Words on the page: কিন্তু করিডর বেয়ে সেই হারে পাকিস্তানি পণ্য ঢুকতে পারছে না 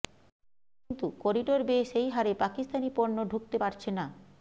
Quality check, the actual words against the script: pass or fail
pass